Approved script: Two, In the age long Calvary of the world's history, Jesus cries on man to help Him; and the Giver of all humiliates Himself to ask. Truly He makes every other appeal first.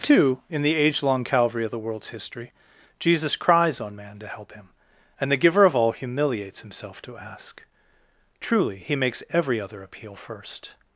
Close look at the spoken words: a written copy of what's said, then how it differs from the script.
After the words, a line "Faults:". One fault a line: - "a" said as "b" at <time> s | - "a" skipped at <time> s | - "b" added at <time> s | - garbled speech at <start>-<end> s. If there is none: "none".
Two, In the age long Calvary of the world's history, Jesus cries on man to help Him; and the Giver of all humiliates Himself to ask. Truly He makes every other appeal first.
Faults:
none